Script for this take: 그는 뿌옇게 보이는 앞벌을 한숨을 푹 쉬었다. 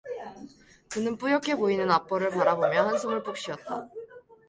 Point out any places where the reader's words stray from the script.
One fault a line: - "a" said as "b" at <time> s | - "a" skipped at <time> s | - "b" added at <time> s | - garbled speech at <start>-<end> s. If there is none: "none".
- "바라보며" added at 2.3 s